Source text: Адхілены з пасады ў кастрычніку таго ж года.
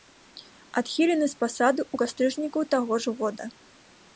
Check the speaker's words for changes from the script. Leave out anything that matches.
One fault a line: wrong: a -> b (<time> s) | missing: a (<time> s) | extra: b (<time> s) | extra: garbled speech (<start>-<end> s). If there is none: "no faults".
no faults